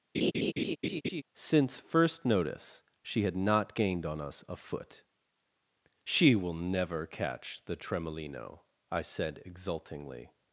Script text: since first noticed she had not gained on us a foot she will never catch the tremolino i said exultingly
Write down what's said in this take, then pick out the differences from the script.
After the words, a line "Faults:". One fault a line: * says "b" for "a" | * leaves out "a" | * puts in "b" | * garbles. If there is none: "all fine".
since first notice she had not gained on us a foot she will never catch the tremolino i said exultingly
Faults:
* says "notice" for "noticed"